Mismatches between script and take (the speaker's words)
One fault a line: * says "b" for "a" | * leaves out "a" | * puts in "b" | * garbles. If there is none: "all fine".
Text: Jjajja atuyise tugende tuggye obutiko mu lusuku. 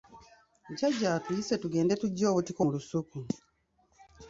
all fine